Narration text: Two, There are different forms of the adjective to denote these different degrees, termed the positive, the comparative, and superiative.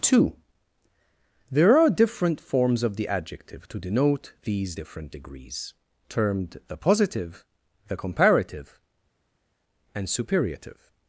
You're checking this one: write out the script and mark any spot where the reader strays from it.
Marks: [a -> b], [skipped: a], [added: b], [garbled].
Two, There are different forms of the adjective to denote these different degrees, termed the positive, the comparative, and superiative.